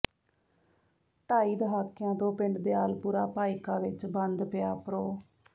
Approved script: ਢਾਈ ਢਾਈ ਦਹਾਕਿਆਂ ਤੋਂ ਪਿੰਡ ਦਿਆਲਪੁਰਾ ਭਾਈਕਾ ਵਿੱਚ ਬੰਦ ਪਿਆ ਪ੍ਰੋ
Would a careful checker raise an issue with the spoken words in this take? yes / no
yes